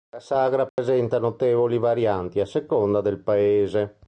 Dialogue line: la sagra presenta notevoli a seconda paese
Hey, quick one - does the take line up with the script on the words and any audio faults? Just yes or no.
no